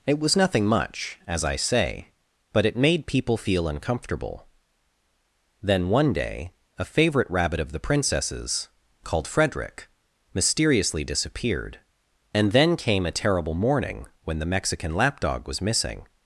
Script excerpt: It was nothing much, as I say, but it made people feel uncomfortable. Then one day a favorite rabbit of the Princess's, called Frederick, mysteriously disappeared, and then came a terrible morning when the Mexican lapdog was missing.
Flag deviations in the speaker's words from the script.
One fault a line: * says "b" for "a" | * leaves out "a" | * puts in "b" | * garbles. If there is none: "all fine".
all fine